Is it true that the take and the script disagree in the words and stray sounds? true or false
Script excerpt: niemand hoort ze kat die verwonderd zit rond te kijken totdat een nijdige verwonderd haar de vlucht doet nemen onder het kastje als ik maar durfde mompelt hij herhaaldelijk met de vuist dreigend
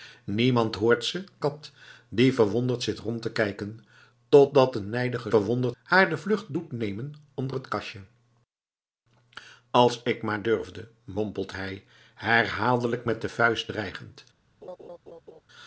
true